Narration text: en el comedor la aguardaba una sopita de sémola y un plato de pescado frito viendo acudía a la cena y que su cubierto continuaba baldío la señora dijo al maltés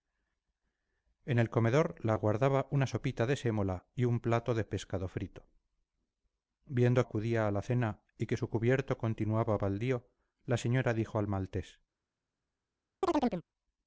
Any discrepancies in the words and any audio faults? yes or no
yes